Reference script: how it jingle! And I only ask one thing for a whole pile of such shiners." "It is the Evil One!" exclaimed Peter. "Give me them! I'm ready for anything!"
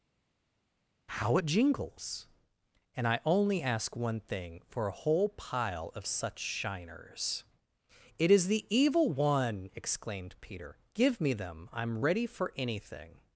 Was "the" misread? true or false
false